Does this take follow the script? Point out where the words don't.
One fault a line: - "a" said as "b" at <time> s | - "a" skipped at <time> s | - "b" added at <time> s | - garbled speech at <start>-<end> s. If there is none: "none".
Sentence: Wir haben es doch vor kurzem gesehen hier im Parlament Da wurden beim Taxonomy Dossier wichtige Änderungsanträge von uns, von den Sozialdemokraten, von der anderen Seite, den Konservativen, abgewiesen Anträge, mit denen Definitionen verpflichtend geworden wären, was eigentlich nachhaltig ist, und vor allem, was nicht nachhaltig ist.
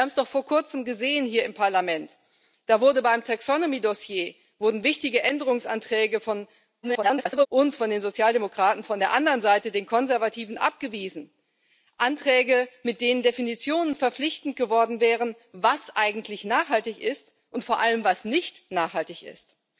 - garbled speech at 6.8-7.5 s